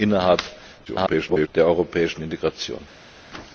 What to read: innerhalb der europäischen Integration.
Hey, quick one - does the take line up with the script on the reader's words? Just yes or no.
no